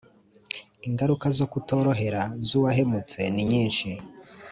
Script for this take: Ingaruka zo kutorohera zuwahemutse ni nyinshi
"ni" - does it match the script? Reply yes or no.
yes